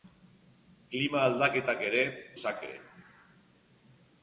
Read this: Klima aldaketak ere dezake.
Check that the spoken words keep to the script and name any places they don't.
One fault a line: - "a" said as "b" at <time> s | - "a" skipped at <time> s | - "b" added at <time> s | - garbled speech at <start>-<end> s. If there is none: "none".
none